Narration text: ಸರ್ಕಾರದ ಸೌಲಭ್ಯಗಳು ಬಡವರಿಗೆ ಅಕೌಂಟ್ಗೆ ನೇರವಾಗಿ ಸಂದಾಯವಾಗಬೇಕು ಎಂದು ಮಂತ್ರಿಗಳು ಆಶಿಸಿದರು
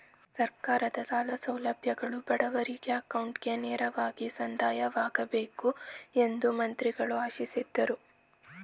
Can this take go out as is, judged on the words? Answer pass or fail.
fail